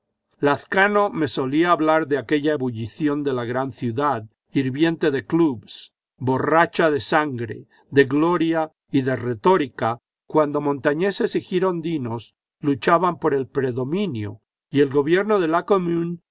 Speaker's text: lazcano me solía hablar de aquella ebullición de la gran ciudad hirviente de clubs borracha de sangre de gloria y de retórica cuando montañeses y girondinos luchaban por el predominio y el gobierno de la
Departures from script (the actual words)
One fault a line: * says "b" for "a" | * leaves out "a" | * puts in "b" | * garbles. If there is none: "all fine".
all fine